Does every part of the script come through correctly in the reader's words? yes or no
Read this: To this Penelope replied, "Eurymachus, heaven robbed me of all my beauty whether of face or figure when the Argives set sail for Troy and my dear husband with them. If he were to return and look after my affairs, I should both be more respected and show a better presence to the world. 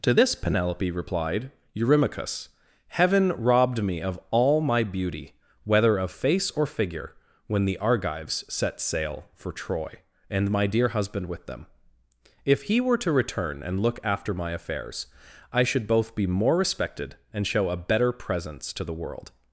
yes